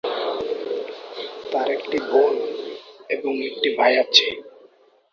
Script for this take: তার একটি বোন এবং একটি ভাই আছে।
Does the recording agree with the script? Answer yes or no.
yes